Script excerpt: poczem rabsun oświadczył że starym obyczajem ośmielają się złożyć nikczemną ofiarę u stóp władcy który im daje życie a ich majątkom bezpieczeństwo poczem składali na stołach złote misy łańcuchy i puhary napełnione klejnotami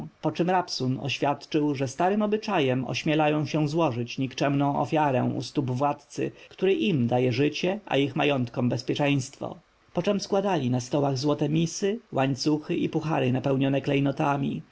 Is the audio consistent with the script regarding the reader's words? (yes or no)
yes